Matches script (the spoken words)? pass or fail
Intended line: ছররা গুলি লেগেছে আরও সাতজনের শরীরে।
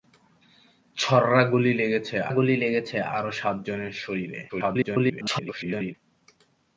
fail